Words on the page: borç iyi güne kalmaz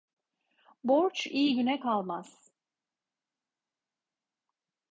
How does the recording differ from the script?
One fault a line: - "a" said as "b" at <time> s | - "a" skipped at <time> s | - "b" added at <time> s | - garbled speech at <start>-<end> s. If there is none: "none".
none